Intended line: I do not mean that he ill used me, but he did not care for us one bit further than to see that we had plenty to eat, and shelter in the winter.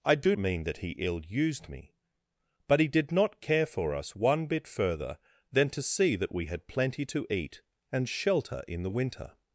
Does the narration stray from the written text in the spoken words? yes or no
yes